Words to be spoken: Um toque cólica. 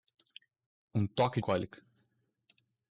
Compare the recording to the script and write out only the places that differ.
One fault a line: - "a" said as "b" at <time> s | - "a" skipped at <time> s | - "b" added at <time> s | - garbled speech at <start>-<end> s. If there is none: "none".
none